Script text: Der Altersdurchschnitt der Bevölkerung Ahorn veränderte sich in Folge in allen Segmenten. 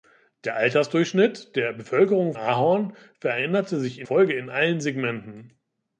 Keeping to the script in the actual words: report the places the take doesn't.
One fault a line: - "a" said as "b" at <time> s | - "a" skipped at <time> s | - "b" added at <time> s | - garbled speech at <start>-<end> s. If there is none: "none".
none